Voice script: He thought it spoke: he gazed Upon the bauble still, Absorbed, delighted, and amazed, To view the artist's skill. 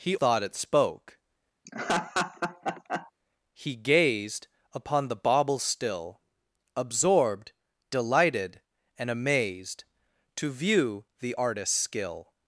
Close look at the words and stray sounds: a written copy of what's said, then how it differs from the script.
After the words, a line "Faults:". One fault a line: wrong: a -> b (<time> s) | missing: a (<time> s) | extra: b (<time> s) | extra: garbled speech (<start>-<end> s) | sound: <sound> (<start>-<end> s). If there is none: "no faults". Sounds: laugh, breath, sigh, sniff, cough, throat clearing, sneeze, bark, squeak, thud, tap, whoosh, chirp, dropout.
He thought it spoke: he gazed Upon the bauble still, Absorbed, delighted, and amazed, To view the artist's skill.
Faults:
sound: laugh (1.6-3.1 s)